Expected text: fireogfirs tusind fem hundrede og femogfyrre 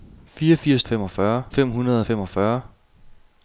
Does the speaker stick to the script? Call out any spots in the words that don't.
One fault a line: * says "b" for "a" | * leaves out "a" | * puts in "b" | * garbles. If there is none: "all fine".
* says "femogfyrre" for "tusind"